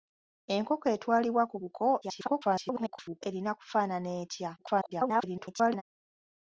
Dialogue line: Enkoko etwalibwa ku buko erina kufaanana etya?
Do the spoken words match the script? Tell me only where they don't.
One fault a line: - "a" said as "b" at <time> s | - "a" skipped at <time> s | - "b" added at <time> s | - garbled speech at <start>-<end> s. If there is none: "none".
- garbled speech at 2.0-3.2 s
- garbled speech at 4.6-5.8 s